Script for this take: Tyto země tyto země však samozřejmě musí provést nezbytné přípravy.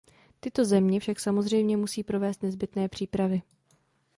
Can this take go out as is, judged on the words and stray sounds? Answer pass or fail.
fail